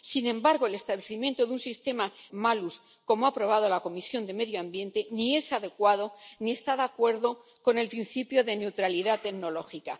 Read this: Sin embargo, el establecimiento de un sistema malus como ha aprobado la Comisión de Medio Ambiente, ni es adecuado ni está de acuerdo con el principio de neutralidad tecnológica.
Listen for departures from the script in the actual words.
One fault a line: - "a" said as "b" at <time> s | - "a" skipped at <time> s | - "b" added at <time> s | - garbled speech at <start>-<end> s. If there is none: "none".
none